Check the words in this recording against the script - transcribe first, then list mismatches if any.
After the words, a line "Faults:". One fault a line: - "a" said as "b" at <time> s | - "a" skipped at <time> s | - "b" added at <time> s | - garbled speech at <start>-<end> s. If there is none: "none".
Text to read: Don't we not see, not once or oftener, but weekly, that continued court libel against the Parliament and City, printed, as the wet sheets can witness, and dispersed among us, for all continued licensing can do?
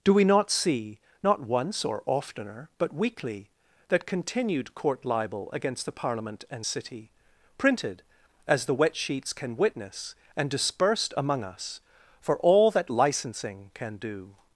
Do we not see, not once or oftener, but weekly, that continued court libel against the Parliament and City, printed, as the wet sheets can witness, and dispersed among us, for all that licensing can do?
Faults:
- "Don't" said as "Do" at 0.0 s
- "continued" said as "that" at 12.7 s